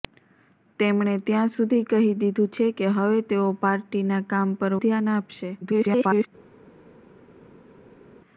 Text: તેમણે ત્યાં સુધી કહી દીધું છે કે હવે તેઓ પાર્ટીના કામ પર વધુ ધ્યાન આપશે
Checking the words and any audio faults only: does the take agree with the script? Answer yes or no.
no